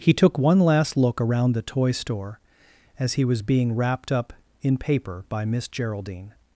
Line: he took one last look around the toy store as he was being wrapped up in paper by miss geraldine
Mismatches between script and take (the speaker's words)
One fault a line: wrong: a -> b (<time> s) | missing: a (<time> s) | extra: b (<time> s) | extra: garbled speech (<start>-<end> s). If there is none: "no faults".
no faults